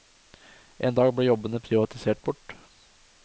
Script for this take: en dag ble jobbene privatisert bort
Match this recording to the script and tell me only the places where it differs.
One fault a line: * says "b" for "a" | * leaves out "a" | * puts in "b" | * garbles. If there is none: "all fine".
all fine